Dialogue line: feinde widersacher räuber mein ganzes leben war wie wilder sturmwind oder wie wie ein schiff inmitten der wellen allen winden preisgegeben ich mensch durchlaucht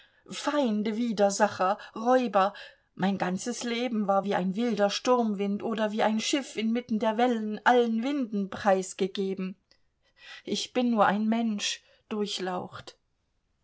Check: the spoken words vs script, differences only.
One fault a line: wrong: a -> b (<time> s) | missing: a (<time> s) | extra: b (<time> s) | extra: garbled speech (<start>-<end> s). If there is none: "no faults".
extra: ein (4.3 s)
missing: wie (6.0 s)
extra: bin nur ein (10.7 s)